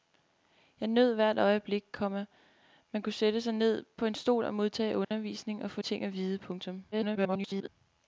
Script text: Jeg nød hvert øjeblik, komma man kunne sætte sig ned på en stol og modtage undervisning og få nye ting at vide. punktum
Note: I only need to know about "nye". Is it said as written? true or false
false